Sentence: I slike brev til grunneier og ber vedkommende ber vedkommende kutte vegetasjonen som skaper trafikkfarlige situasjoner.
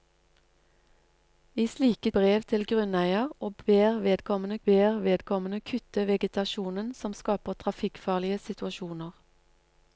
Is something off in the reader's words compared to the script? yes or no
no